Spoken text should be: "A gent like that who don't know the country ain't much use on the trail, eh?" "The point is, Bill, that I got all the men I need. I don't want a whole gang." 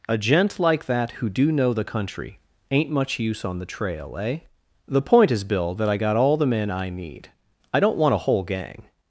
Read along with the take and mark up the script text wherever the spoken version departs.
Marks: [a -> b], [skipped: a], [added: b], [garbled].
"A gent like that who [don't -> do] know the country ain't much use on the trail, eh?" "The point is, Bill, that I got all the men I need. I don't want a whole gang."